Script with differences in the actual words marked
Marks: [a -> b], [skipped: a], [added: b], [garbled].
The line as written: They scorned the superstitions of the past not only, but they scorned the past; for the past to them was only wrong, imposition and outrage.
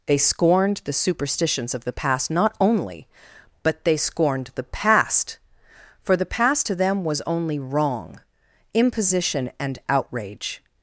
They scorned the superstitions of the past not only, but they scorned the past; for the past to them was only wrong, imposition and outrage.